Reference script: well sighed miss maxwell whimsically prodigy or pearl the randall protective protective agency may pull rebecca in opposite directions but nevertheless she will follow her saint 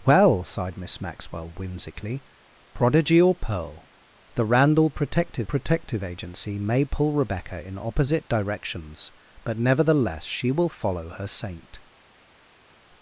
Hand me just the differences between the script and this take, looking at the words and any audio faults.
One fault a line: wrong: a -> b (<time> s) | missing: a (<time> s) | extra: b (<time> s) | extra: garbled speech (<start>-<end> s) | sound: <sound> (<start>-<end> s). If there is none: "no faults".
no faults